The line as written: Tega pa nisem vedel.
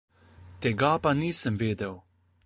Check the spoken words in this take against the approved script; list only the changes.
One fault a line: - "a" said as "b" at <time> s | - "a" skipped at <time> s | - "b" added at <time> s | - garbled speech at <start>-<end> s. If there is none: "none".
none